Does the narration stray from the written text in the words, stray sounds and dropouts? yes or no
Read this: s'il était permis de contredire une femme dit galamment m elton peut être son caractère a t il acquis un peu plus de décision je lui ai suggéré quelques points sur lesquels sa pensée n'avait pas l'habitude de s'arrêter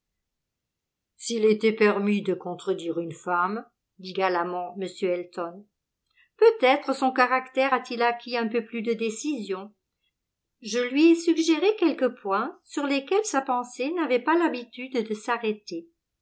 no